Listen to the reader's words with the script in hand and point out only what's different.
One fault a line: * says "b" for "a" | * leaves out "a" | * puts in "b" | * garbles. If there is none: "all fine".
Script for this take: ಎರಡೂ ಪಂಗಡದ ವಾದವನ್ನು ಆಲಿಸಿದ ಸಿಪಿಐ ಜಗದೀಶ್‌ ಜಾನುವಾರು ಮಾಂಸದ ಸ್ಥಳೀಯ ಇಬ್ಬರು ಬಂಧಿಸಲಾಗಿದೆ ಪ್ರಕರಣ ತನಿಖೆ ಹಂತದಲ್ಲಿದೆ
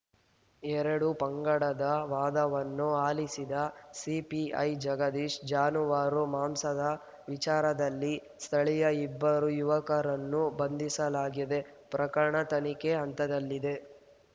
* puts in "ವಿಚಾರದಲ್ಲಿ"
* puts in "ಯುವಕರನ್ನು"